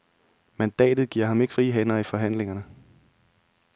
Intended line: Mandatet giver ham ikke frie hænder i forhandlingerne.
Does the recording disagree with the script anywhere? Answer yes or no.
no